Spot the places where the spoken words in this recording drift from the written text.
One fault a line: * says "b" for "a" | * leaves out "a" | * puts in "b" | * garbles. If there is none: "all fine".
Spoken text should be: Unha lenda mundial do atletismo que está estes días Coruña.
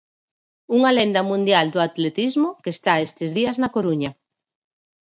* puts in "na"